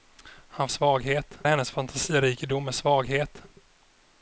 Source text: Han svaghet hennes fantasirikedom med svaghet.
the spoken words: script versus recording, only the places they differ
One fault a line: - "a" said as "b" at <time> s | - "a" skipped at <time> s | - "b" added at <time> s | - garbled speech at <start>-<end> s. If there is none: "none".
none